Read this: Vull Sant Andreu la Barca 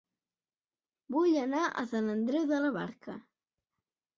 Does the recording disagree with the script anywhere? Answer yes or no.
yes